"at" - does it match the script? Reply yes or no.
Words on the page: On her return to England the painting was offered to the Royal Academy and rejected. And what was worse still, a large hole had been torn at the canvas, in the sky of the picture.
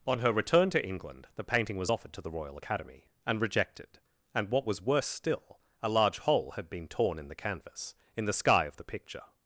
no